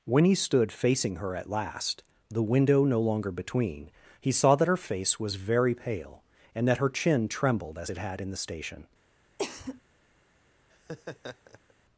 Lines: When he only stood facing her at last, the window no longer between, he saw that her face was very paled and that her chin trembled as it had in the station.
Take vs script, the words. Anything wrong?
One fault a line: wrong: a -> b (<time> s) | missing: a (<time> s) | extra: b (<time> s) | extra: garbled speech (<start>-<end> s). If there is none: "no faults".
missing: only (0.3 s)
wrong: paled -> pale (5.8 s)